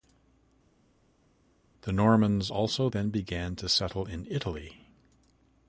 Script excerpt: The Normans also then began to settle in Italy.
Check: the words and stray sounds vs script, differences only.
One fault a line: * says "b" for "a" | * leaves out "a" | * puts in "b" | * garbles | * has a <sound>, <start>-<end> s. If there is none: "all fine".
all fine